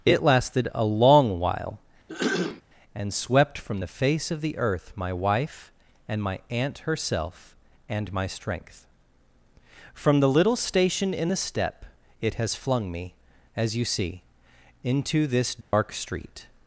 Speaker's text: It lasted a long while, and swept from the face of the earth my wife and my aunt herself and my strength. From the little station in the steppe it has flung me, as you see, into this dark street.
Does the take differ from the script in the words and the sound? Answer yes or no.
yes